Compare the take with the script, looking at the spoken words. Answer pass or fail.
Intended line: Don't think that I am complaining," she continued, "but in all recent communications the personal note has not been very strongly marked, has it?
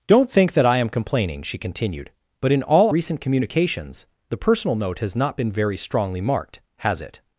pass